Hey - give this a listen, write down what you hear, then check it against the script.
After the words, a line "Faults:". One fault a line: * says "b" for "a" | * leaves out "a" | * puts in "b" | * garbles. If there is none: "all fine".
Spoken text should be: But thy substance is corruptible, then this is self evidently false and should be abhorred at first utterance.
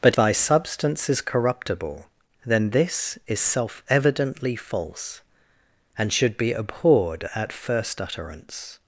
But thy substance is corruptible, then this is self evidently false and should be abhorred at first utterance.
Faults:
all fine